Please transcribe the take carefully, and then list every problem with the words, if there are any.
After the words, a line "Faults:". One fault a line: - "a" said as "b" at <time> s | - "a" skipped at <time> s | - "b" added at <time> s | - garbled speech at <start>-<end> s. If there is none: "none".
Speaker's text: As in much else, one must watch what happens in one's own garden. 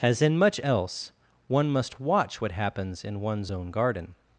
As in much else, one must watch what happens in one's own garden.
Faults:
none